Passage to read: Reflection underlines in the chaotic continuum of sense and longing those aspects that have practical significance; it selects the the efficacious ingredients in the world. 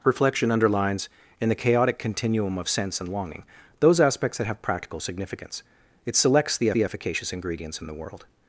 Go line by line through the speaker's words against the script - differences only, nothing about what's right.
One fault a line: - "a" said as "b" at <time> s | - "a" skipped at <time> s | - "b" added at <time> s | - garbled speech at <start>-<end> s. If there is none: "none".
none